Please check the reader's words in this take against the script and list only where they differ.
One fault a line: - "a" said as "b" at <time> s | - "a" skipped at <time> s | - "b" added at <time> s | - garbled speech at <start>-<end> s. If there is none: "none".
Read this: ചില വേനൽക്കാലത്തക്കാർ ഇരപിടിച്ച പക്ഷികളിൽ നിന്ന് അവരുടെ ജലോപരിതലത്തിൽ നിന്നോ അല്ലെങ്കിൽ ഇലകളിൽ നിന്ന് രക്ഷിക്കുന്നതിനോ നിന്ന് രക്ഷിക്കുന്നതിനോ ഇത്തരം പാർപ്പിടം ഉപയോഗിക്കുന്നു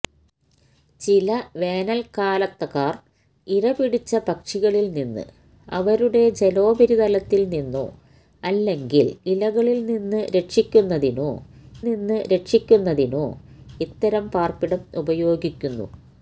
none